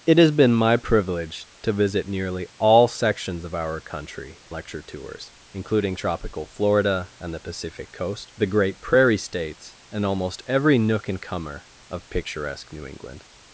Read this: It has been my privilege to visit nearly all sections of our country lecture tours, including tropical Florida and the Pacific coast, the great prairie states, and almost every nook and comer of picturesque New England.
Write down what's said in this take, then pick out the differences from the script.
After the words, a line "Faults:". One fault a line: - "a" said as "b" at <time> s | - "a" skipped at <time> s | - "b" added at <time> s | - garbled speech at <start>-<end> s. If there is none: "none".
It has been my privilege to visit nearly all sections of our country lecture tours, including tropical Florida and the Pacific coast, the great prairie states, and almost every nook and comer of picturesque New England.
Faults:
none